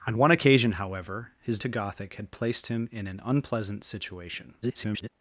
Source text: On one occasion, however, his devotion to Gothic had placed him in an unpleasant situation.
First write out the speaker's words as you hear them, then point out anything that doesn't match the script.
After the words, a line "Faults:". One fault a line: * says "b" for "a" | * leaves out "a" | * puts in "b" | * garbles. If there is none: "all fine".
On one occasion, however, his to Gothic had placed him in an unpleasant situation. [garbled]
Faults:
* leaves out "devotion"
* garbles